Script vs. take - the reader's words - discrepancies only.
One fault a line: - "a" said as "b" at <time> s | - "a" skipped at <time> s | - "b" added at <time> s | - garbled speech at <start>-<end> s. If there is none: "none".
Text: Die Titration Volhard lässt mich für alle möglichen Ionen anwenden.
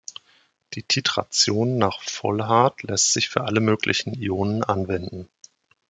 - "nach" added at 1.8 s
- "mich" said as "sich" at 3.1 s